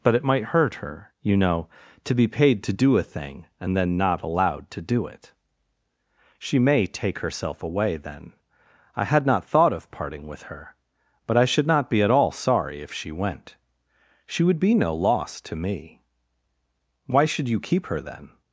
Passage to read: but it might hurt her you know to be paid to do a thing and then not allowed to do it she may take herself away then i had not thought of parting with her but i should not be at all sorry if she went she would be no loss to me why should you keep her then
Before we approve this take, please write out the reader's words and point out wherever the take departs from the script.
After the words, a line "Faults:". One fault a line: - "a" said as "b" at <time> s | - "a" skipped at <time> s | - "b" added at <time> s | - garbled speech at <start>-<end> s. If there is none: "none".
but it might hurt her you know to be paid to do a thing and then not allowed to do it she may take herself away then i had not thought of parting with her but i should not be at all sorry if she went she would be no loss to me why should you keep her then
Faults:
none